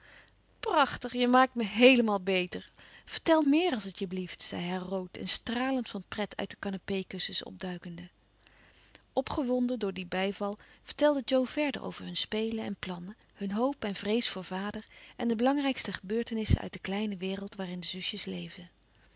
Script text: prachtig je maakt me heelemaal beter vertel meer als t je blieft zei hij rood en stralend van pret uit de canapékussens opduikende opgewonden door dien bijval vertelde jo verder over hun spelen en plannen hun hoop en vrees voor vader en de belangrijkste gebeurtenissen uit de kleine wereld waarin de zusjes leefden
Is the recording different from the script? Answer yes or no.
no